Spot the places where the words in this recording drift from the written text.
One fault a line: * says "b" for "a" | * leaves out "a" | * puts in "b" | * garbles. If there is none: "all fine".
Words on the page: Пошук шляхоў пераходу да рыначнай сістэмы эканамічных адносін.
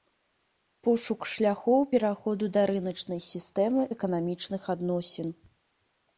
all fine